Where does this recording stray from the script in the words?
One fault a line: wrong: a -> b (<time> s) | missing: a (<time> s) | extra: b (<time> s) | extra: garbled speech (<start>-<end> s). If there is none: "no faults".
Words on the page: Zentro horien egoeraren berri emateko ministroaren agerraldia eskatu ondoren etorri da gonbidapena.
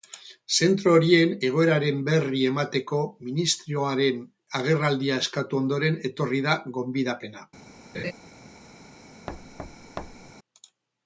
no faults